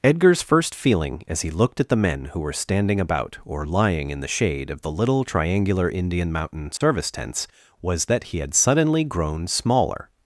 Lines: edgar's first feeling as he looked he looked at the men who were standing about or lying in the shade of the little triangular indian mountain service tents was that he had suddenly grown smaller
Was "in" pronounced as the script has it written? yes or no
yes